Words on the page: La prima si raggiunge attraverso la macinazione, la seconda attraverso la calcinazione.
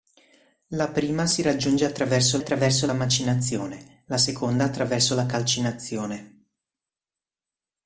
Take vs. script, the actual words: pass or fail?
fail